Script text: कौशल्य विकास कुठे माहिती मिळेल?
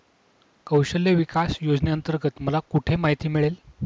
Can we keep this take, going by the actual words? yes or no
no